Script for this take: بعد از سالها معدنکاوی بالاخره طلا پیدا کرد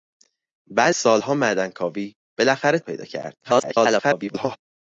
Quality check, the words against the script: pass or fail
fail